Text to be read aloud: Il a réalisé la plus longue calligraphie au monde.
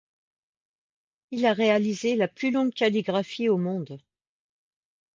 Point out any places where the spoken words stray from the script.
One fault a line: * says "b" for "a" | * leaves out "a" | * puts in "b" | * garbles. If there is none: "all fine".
all fine